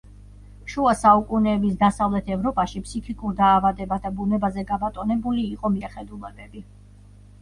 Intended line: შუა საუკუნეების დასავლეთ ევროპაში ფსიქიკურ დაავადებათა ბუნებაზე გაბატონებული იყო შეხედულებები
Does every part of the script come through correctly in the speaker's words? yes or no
yes